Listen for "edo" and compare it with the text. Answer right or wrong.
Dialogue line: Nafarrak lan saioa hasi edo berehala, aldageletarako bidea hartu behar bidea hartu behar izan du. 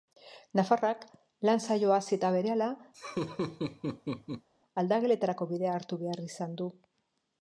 wrong